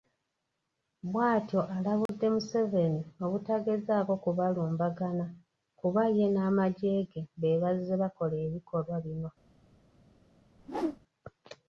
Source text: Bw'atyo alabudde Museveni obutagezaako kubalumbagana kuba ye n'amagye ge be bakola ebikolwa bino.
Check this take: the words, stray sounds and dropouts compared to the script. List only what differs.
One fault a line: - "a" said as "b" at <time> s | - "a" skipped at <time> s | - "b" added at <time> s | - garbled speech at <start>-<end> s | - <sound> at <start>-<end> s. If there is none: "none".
- dropout at 2.1-2.1 s
- "bazze" added at 7.6 s
- whoosh at 10.6-11.0 s